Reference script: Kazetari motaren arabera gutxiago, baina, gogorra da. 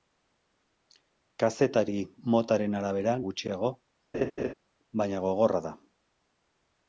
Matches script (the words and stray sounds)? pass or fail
fail